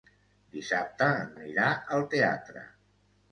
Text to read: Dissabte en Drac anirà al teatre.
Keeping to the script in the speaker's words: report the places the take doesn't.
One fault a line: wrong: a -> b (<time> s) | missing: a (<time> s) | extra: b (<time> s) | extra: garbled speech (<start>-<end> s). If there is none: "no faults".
missing: Drac (1.4 s)